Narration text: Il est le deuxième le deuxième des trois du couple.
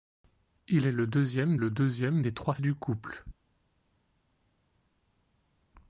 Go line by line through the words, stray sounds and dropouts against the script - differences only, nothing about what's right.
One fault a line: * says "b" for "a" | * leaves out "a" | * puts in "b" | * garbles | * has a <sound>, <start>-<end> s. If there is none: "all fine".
all fine